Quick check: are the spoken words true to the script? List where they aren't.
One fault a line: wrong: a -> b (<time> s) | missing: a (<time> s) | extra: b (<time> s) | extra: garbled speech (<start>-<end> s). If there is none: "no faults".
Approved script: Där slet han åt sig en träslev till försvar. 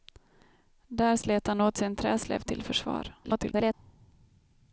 extra: garbled speech (3.2-3.7 s)